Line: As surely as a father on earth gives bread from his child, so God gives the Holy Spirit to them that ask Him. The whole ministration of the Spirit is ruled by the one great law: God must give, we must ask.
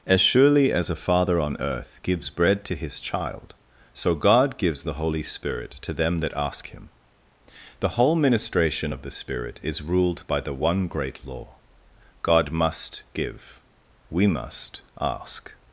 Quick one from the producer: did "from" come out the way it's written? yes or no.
no